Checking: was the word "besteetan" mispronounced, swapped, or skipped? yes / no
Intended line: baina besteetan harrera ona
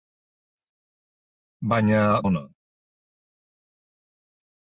yes